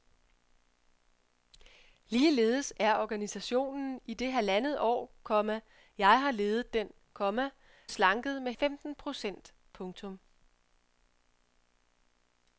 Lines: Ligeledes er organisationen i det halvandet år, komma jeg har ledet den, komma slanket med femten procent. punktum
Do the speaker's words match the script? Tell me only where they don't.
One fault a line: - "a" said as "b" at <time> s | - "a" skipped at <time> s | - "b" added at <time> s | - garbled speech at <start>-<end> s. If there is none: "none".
none